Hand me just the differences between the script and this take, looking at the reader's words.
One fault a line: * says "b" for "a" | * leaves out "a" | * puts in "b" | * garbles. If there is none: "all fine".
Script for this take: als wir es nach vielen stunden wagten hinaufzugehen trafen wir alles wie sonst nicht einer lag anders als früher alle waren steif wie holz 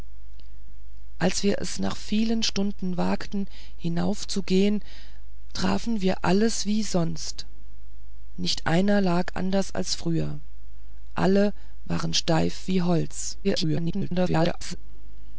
* garbles